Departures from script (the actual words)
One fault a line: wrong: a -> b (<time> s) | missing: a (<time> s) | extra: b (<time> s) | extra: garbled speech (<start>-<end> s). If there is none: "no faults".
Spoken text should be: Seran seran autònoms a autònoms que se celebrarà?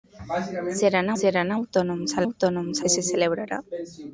no faults